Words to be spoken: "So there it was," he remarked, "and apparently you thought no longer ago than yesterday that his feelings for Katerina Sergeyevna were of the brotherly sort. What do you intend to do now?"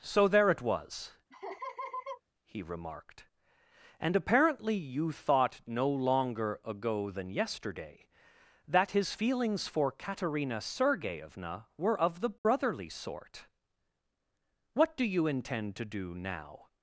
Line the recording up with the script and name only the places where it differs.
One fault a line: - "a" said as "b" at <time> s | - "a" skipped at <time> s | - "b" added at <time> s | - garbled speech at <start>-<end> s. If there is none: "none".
none